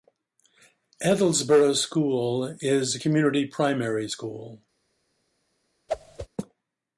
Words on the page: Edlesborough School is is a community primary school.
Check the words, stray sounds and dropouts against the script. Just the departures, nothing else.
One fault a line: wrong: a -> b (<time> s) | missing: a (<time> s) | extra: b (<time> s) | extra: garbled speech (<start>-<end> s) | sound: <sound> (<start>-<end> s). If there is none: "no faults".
missing: is (3.0 s)
sound: whoosh (5.9-6.3 s)